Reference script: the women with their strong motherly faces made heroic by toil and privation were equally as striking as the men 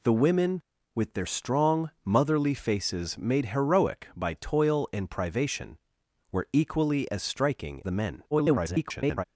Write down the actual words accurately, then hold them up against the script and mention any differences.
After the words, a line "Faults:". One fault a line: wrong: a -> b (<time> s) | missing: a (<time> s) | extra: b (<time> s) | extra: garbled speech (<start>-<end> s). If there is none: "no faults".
the women with their strong motherly faces made heroic by toil and privation were equally as striking the men [garbled]
Faults:
missing: as (7.8 s)
extra: garbled speech (8.3-9.2 s)